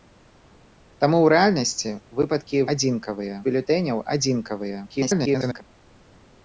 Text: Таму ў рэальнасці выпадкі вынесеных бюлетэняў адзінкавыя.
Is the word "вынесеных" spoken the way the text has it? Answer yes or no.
no